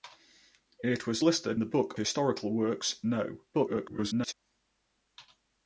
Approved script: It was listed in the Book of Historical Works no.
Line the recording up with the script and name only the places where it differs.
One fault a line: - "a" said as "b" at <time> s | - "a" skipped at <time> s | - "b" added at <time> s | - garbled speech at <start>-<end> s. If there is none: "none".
- "in" skipped at 1.6 s
- "of" skipped at 2.0 s
- garbled speech at 3.5-4.3 s